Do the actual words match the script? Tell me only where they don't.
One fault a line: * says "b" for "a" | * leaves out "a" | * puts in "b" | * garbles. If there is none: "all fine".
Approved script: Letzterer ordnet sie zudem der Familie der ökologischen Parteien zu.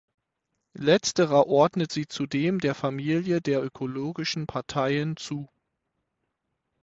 all fine